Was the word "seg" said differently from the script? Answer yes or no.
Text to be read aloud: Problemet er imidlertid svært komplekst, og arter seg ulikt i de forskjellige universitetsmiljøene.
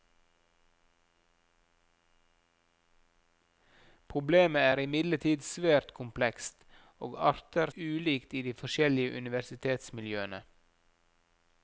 yes